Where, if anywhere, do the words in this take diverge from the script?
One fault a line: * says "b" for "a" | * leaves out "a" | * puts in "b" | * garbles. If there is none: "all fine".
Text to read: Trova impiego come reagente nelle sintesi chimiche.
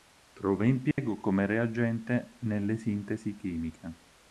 all fine